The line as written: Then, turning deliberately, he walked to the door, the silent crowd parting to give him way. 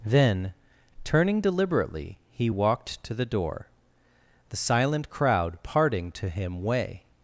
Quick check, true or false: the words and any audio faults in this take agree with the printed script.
false